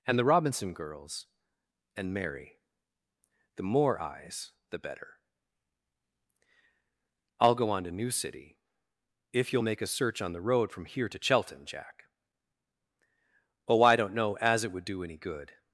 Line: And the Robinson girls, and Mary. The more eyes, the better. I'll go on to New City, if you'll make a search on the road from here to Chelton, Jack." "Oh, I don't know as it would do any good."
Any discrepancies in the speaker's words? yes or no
no